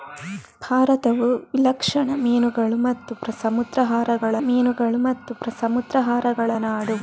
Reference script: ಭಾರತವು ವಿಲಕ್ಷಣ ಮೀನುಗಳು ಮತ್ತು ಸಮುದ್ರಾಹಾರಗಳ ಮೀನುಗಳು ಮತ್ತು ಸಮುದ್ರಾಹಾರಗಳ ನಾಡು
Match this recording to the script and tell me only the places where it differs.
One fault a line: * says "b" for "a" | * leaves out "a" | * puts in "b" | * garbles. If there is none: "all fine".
all fine